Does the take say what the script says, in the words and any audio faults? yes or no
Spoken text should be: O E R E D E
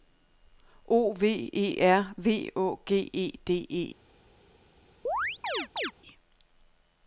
no